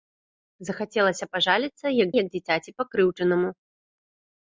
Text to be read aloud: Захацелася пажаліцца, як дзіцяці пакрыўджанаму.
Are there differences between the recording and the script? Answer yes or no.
yes